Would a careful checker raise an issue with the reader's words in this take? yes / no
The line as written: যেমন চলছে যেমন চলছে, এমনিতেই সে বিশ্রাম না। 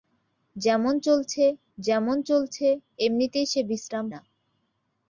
no